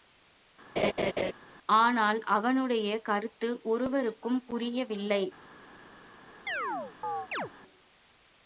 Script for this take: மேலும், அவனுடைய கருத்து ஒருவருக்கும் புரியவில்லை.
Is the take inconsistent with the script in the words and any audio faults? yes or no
yes